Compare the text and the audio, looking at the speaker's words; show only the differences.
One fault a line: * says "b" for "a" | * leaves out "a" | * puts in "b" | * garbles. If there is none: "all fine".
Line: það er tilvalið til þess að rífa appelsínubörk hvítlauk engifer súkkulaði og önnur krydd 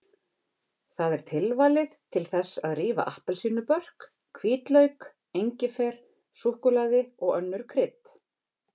all fine